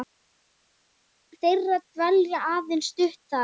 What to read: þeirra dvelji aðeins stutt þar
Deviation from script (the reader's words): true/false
false